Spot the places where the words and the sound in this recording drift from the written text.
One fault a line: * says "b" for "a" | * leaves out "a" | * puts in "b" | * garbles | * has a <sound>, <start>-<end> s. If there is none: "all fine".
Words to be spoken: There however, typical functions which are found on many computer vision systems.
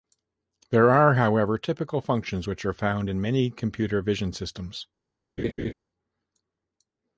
* puts in "are"
* says "in" for "on"
* has a laugh, 5.4-5.7 s